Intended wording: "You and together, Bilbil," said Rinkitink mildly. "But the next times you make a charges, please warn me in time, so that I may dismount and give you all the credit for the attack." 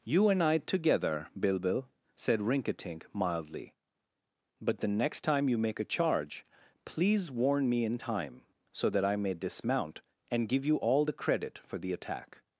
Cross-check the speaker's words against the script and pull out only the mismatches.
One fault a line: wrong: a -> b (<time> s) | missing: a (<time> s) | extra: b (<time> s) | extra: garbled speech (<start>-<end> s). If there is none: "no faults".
extra: I (0.4 s)
wrong: times -> time (5.2 s)
wrong: charges -> charge (5.8 s)